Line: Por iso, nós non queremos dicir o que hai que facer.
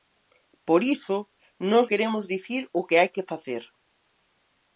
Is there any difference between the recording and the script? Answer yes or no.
yes